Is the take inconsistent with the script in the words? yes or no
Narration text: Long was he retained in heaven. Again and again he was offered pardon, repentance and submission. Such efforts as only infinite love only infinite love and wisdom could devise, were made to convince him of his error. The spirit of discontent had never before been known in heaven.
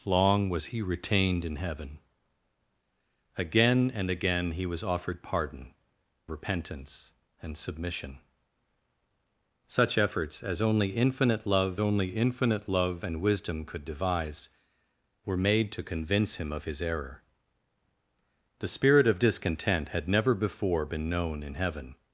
no